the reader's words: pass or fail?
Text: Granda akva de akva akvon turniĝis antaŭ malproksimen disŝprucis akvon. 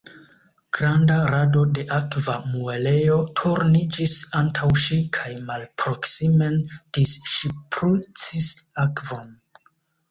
fail